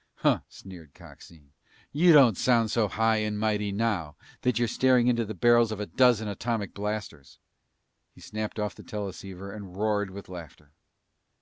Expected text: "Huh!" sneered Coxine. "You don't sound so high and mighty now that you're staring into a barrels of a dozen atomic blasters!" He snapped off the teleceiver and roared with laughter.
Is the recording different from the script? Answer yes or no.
yes